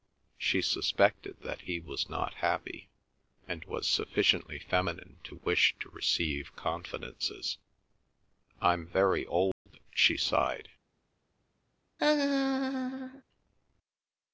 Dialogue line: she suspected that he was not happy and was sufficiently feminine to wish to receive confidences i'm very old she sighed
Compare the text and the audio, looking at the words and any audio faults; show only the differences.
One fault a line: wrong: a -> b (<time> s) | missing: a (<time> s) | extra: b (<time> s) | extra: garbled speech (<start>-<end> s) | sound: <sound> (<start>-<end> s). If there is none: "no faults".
sound: dropout (9.5-9.7 s)
sound: laugh (12.0-13.2 s)